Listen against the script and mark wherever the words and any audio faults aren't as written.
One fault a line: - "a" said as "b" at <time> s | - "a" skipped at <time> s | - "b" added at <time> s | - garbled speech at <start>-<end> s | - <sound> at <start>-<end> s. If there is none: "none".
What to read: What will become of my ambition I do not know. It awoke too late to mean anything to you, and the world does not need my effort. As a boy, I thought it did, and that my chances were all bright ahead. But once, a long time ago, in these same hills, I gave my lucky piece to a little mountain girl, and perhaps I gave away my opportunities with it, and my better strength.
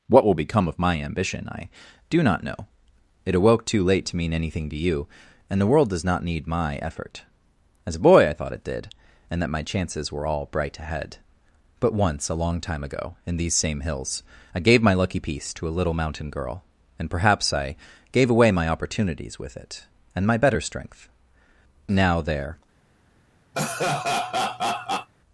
- "Now there" added at 21.9 s
- laugh at 23.5-25.1 s